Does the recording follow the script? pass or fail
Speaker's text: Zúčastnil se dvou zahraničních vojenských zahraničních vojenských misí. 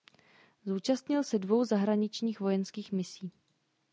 fail